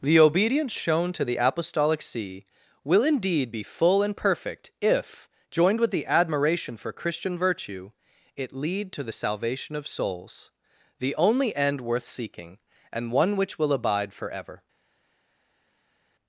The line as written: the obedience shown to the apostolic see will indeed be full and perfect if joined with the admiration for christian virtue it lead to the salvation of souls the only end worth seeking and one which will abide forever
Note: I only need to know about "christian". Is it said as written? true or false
true